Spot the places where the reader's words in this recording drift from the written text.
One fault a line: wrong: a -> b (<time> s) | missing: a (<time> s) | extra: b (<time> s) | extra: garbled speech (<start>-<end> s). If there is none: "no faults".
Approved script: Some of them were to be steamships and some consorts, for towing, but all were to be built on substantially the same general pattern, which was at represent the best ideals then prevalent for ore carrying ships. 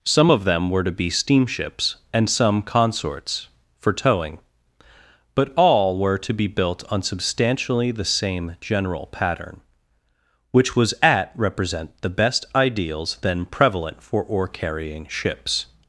no faults